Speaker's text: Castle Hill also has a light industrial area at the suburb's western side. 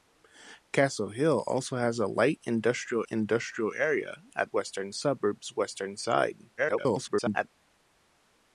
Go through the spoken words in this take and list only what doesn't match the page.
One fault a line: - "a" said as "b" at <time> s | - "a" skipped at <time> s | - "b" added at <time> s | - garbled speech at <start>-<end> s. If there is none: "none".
- "industrial" added at 3.1 s
- "the" said as "western" at 4.5 s
- garbled speech at 6.6-7.5 s